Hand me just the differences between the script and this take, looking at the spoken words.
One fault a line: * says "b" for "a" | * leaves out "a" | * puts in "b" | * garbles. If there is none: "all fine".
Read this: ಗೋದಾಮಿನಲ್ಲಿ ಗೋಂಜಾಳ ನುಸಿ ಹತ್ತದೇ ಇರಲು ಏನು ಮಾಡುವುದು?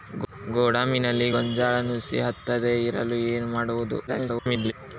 * garbles